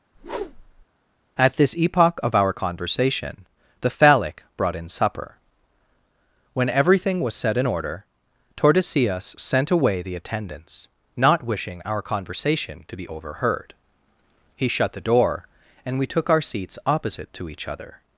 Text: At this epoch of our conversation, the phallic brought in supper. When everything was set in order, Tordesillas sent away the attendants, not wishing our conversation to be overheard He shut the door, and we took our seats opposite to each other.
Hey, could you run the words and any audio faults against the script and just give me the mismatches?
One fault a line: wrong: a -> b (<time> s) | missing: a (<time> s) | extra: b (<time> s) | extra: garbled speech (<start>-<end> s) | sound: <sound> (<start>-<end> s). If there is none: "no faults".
sound: whoosh (0.1-0.9 s)